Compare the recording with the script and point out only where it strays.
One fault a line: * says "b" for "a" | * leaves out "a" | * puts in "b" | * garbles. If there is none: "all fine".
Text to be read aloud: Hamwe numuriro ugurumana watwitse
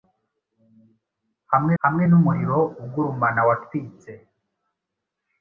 * puts in "hamwe"